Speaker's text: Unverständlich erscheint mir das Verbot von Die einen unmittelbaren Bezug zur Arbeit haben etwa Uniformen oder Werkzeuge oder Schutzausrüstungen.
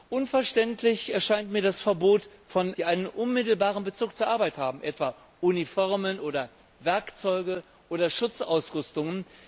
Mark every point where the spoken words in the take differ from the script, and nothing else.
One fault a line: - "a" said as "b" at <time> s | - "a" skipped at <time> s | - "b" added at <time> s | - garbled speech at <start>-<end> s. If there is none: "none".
none